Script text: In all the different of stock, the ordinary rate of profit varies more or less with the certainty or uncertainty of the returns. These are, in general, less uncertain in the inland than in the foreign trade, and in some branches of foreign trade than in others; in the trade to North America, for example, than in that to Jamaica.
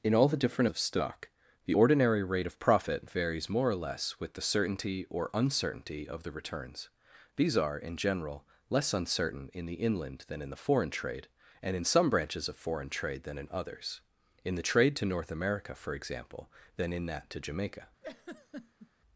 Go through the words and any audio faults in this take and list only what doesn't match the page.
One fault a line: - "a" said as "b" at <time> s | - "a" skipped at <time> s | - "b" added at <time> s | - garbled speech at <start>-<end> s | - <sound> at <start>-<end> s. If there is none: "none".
- laugh at 18.0-18.9 s